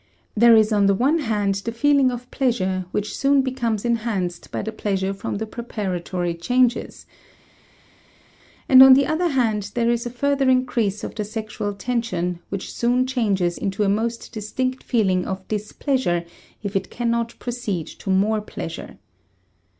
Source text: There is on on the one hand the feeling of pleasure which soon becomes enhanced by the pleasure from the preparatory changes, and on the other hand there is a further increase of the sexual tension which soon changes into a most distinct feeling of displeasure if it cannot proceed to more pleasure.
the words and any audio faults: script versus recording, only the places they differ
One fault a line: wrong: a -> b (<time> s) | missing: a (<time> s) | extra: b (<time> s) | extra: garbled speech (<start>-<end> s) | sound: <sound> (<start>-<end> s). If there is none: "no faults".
missing: on (0.9 s)